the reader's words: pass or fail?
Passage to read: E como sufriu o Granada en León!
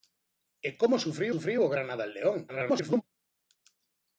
fail